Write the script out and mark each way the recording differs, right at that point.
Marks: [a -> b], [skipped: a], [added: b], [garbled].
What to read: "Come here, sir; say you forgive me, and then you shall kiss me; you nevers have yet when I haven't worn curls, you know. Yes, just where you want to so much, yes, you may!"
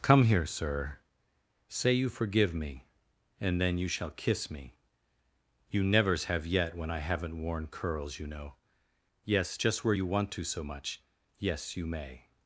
"Come here, sir; say you forgive me, and then you shall kiss me; you nevers have yet when I haven't worn curls, you know. Yes, just where you want to so much, yes, you may!"